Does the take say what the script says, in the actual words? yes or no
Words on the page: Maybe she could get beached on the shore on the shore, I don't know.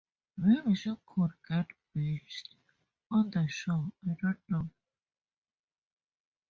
no